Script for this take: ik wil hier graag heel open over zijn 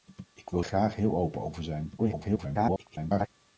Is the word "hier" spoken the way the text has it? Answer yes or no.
no